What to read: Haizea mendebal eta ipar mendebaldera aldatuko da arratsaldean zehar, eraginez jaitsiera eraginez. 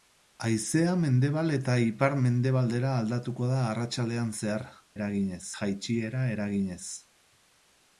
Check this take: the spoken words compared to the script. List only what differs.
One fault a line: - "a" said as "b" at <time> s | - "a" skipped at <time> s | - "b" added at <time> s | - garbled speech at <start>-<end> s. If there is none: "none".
none